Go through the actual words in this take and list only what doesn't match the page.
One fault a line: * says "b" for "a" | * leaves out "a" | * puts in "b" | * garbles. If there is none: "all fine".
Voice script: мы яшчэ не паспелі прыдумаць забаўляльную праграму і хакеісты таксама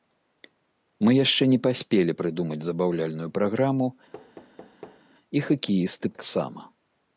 all fine